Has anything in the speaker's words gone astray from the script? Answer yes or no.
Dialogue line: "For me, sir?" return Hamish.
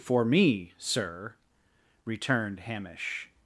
yes